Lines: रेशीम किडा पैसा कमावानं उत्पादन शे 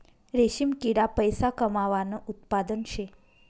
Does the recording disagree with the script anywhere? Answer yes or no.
no